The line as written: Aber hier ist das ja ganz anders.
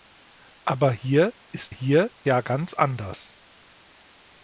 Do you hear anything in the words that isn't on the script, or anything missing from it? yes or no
yes